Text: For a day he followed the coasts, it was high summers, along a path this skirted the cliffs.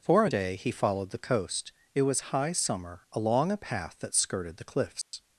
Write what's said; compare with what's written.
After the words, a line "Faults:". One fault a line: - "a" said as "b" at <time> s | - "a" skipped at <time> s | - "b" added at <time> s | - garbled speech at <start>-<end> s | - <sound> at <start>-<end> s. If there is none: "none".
For a day he followed the coast, it was high summer, along a path that skirted the cliffs.
Faults:
- "coasts" said as "coast" at 1.3 s
- "summers" said as "summer" at 2.5 s
- "this" said as "that" at 4.0 s
- dropout at 5.0-5.1 s